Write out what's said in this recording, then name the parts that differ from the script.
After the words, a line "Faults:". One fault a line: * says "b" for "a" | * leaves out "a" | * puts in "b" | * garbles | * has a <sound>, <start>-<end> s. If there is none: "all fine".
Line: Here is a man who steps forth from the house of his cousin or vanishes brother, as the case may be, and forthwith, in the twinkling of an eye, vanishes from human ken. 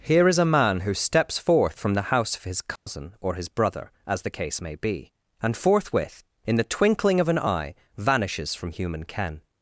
Here is a man who steps forth from the house of his cousin or his brother, as the case may be, and forthwith, in the twinkling of an eye, vanishes from human ken.
Faults:
* has a dropout, 2.8-2.9 s
* says "his" for "vanishes"